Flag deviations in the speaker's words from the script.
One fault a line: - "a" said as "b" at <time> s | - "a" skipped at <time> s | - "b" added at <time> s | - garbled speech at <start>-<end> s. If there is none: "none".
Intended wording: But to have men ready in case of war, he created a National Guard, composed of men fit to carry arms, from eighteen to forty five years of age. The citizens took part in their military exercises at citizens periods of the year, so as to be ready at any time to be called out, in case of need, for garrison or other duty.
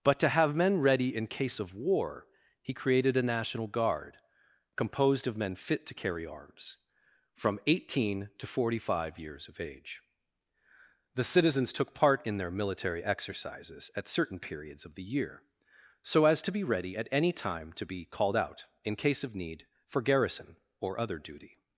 - "citizens" said as "certain" at 14.1 s